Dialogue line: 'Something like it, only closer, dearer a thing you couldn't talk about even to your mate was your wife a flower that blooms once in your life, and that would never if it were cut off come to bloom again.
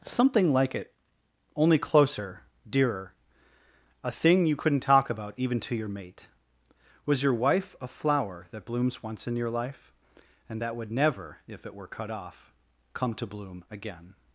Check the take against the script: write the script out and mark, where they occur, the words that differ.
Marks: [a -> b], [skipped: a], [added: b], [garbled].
'Something like it, only closer, dearer a thing you couldn't talk about even to your mate was your wife a flower that blooms once in your life, and that would never if it were cut off come to bloom again.